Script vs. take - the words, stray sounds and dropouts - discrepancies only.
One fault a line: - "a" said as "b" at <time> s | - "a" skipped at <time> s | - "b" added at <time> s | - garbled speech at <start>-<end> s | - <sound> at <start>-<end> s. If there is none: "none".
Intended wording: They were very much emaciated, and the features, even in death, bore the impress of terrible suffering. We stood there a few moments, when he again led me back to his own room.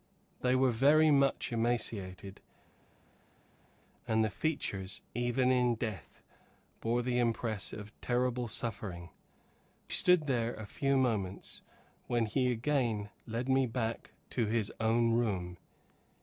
- "We" skipped at 9.1 s